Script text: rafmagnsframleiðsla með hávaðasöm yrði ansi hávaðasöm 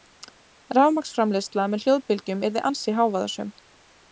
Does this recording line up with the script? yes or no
no